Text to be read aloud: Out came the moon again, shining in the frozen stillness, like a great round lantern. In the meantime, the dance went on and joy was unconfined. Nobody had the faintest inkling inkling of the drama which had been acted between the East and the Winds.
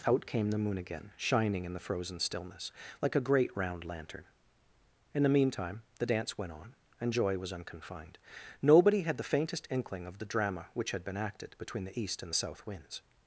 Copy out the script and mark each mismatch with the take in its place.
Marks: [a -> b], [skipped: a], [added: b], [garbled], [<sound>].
Out came the moon again, shining in the frozen stillness, like a great round lantern. In the meantime, the dance went on and joy was unconfined. Nobody had the faintest inkling [skipped: inkling] of the drama which had been acted between the East and the [added: South] Winds.